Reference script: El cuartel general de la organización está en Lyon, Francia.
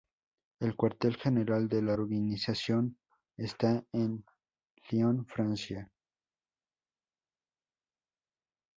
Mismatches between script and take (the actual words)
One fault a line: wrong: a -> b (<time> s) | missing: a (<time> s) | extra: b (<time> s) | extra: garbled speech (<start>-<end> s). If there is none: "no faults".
no faults